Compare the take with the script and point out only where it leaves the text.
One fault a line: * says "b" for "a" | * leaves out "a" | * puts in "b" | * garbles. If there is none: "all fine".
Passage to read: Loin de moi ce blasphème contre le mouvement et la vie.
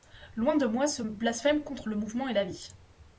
all fine